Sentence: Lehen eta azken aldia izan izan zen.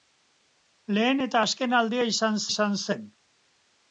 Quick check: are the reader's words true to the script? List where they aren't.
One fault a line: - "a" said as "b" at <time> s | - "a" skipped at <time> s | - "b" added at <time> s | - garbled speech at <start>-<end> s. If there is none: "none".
none